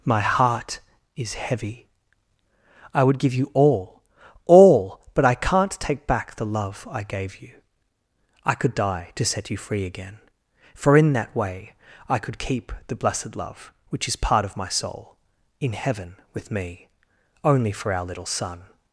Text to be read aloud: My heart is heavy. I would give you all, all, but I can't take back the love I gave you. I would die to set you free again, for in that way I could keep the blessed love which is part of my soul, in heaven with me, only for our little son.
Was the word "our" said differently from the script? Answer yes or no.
no